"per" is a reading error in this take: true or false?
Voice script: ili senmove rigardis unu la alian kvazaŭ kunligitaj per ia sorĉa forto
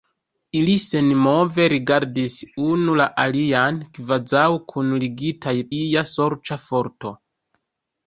true